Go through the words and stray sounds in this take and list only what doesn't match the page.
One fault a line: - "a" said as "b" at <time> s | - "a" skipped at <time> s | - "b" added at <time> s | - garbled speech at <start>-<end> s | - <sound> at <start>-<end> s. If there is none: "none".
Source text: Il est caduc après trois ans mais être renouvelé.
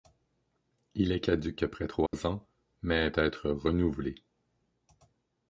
- dropout at 2.1-2.1 s